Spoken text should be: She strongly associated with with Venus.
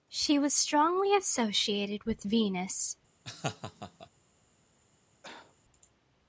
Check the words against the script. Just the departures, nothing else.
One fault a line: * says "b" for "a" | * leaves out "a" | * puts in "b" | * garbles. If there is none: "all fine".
* puts in "was"
* leaves out "with"